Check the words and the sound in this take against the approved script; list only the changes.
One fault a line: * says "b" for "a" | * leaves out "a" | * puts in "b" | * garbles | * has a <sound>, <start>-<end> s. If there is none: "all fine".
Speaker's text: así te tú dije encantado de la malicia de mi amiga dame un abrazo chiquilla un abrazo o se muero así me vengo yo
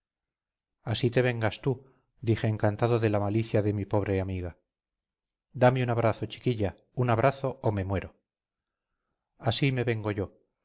* puts in "vengas"
* puts in "pobre"
* says "me" for "se"